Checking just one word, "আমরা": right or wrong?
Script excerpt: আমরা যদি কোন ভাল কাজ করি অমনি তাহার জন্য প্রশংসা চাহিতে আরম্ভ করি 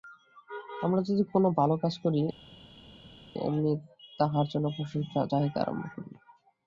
right